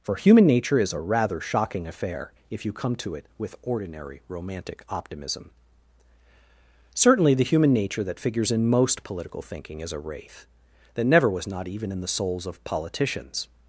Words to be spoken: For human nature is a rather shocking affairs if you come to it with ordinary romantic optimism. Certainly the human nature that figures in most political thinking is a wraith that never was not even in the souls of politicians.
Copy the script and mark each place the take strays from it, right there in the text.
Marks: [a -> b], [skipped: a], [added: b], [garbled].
For human nature is a rather shocking [affairs -> affair] if you come to it with ordinary romantic optimism. Certainly the human nature that figures in most political thinking is a wraith that never was not even in the souls of politicians.